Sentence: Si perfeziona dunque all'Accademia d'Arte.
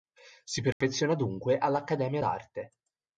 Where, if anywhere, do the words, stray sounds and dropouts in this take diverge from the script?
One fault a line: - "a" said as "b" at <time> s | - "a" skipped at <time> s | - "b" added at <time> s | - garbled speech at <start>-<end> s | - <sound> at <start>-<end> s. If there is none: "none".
- dropout at 0.7-0.8 s